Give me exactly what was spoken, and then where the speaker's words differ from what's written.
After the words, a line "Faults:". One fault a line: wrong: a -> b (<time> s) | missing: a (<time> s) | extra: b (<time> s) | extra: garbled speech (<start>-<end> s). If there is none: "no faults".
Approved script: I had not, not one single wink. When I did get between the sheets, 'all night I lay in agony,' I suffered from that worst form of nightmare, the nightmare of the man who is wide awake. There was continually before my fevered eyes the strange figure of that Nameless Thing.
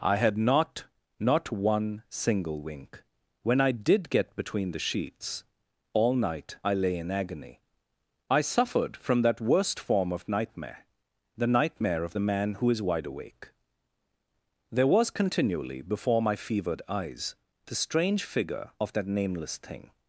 I had not, not one single wink. When I did get between the sheets, 'all night I lay in agony,' I suffered from that worst form of nightmare, the nightmare of the man who is wide awake. There was continually before my fevered eyes the strange figure of that Nameless Thing.
Faults:
no faults